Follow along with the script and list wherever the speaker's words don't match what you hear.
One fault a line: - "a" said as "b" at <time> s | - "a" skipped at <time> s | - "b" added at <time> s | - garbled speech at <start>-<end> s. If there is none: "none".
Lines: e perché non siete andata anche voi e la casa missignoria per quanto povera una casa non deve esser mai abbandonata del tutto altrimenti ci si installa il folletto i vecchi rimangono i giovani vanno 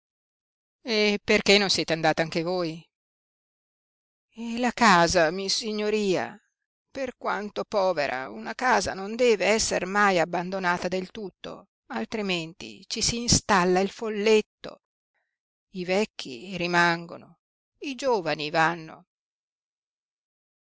none